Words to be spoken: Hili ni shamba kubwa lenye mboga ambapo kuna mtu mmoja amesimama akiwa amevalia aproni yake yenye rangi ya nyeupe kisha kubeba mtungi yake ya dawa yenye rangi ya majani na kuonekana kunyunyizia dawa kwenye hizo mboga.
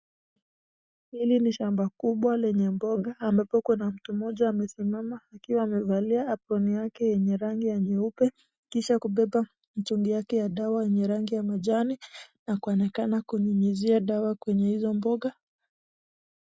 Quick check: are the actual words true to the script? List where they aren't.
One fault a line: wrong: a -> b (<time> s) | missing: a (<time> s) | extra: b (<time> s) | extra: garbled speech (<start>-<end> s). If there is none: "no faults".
no faults